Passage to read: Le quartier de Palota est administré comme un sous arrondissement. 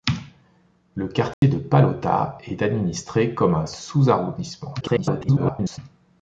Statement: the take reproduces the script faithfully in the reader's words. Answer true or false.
false